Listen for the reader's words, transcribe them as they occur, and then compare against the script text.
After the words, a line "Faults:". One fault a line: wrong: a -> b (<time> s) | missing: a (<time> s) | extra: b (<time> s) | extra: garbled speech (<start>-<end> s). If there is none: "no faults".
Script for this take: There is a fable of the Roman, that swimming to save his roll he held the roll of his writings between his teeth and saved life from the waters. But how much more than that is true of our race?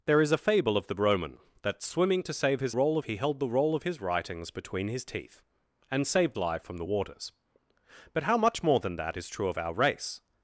There is a fable of the Roman, that swimming to save his roll he held the roll of his writings between his teeth and saved life from the waters. But how much more than that is true of our race?
Faults:
no faults